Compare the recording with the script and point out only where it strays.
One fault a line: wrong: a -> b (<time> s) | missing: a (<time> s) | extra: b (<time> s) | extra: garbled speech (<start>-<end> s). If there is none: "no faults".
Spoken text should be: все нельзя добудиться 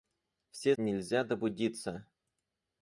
no faults